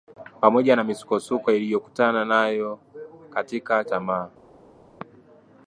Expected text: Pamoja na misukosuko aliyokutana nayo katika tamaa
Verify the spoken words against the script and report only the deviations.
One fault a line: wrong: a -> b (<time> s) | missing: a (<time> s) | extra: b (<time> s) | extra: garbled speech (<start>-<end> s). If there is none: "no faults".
no faults